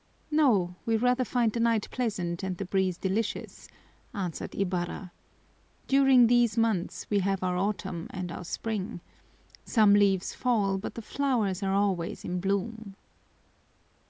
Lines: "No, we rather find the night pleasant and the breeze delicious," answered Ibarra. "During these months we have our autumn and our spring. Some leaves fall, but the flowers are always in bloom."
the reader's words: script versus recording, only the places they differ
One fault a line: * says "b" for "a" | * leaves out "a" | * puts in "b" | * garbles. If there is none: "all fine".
all fine